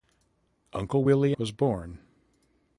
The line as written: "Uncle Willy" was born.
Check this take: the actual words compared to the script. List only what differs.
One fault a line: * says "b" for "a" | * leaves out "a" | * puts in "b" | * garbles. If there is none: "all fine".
all fine